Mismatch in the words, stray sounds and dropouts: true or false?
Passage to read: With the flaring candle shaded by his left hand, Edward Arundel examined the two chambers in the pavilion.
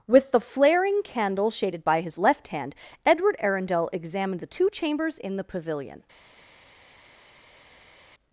false